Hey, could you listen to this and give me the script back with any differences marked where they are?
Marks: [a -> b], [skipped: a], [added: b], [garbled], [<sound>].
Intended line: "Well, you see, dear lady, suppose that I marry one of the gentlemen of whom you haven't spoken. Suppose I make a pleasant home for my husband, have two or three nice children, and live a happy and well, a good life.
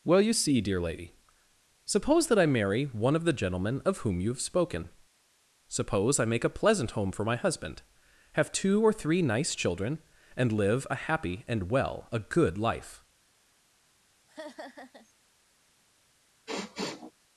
"Well, you see, dear lady, suppose that I marry one of the gentlemen of whom you [haven't -> have] spoken. Suppose I make a pleasant home for my husband, have two or three nice children, and live a happy and well, a good life. [laugh] [sniff]